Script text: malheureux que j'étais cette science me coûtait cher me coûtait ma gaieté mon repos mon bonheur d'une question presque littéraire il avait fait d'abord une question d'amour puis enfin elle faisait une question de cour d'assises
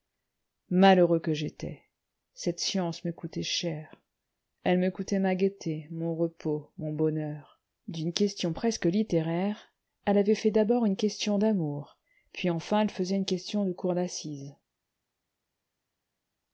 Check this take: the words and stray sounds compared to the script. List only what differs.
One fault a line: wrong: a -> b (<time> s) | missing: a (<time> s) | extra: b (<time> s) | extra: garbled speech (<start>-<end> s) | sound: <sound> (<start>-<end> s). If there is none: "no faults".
extra: elle (4.6 s)
wrong: il -> elle (10.1 s)